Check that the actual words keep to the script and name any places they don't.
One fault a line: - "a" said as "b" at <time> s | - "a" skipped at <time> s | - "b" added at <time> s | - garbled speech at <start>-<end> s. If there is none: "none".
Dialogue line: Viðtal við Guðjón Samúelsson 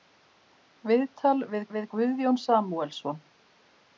- "við" added at 1.7 s